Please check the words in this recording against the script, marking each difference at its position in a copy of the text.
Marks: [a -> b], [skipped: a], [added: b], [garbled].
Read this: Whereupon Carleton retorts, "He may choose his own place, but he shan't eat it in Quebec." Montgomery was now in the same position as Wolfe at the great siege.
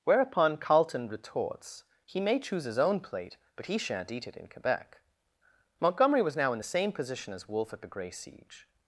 Whereupon Carleton retorts, "He may choose his own [place, -> plate] but he shan't eat it in Quebec." Montgomery was now in the same position as Wolfe at the [great -> grey] siege.